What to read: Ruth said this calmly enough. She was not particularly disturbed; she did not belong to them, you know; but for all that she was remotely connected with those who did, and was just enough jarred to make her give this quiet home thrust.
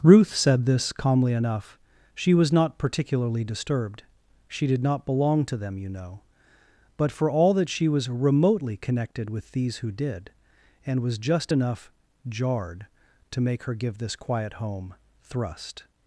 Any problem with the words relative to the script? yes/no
yes